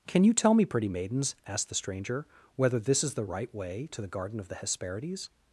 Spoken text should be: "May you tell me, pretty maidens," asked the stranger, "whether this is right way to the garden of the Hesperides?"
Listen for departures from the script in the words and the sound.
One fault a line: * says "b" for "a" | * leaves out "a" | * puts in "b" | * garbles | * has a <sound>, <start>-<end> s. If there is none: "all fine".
* says "Can" for "May"
* puts in "the"